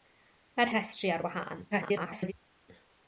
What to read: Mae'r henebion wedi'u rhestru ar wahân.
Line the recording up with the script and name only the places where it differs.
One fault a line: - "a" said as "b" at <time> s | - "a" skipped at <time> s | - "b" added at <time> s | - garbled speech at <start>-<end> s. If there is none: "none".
- "henebion wedi'u" skipped at 0.7 s
- garbled speech at 1.7-2.3 s